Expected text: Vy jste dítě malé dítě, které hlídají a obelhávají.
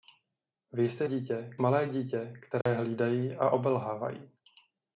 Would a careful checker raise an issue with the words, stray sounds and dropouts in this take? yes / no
yes